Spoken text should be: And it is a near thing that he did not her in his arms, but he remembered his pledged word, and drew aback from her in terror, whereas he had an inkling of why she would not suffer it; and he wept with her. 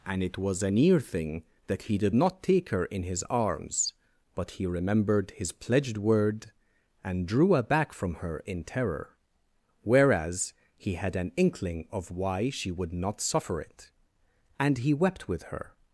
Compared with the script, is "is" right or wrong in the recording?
wrong